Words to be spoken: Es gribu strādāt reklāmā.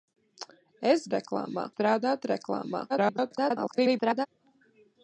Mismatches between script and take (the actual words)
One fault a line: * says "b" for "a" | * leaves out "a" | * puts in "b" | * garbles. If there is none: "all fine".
* says "reklāmā" for "gribu"
* garbles